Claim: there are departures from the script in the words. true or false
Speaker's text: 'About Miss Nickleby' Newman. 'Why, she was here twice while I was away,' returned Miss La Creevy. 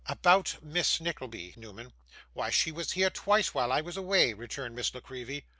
false